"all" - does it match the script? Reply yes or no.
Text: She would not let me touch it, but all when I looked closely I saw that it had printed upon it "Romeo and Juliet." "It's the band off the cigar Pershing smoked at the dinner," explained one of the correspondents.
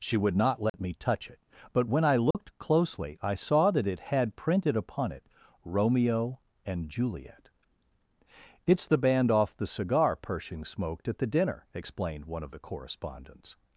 no